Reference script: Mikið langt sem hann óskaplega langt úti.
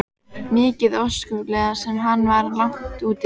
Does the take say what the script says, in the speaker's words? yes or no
no